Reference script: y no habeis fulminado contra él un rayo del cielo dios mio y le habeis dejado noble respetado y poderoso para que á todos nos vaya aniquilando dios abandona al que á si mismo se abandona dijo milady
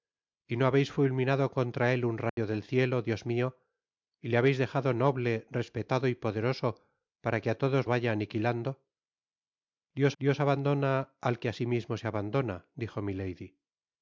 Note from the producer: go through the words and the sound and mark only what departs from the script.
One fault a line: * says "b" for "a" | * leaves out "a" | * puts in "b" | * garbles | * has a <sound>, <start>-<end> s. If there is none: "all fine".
* has a dropout, 2.3-2.4 s
* leaves out "nos"
* puts in "dios"